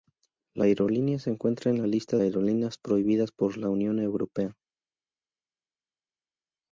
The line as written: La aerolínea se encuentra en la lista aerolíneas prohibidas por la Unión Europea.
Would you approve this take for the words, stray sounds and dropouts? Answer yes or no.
yes